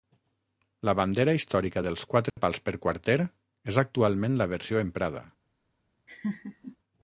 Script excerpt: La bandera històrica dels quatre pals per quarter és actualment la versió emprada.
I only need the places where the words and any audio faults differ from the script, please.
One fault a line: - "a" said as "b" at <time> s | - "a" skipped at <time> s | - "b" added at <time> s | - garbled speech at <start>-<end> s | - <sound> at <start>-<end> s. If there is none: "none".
- dropout at 2.3-2.4 s
- laugh at 6.1-6.8 s